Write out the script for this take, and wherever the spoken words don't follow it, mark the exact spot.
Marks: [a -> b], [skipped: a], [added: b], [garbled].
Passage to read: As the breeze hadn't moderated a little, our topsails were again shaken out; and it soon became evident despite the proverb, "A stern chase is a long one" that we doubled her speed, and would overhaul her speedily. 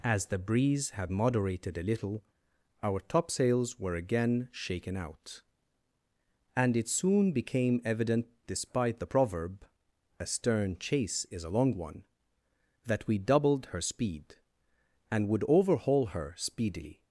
As the breeze [hadn't -> had] moderated a little, our topsails were again shaken out; and it soon became evident despite the proverb, "A stern chase is a long one" that we doubled her speed, and would overhaul her speedily.